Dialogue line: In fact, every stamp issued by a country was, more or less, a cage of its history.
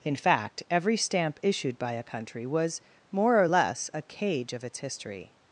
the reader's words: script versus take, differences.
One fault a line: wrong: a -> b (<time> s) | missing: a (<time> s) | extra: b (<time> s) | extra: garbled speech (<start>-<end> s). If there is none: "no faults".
no faults